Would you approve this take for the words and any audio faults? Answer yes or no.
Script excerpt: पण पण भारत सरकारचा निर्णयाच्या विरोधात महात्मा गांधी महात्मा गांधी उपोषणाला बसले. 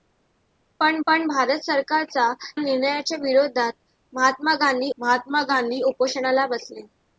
yes